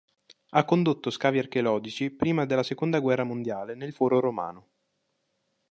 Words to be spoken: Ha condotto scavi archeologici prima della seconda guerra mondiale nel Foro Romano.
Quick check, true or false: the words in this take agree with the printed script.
true